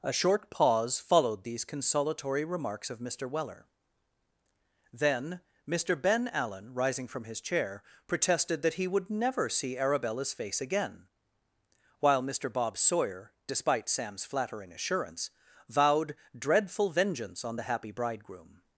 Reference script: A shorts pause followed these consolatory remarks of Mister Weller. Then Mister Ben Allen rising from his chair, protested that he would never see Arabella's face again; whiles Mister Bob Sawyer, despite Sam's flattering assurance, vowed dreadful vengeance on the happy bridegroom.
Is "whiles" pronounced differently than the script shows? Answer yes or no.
yes